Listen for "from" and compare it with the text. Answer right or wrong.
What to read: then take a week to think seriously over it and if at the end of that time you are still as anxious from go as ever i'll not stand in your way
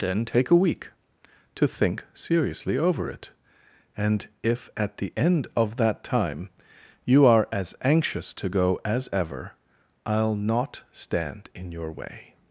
wrong